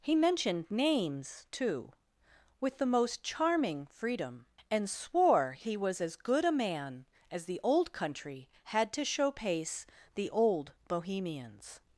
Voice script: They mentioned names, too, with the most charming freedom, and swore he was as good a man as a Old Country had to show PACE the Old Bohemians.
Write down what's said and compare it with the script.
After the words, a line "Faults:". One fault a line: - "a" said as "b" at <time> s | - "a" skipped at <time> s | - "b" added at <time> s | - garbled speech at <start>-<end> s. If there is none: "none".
He mentioned names, too, with the most charming freedom, and swore he was as good a man as the Old Country had to show PACE the Old Bohemians.
Faults:
- "They" said as "He" at 0.0 s
- "a" said as "the" at 7.5 s